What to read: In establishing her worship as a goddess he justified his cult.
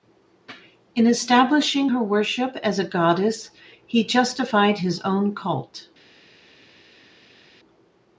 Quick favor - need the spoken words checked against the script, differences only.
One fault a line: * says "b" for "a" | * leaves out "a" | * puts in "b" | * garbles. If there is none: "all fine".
* puts in "own"